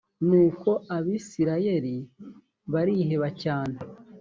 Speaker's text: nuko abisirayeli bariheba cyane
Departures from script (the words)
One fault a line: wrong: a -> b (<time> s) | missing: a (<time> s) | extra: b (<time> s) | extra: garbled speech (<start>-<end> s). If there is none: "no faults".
no faults